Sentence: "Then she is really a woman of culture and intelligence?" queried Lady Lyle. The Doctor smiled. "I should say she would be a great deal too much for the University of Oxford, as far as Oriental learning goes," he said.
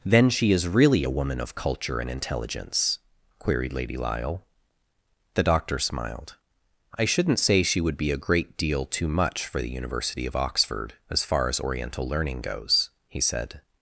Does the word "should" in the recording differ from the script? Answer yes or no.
yes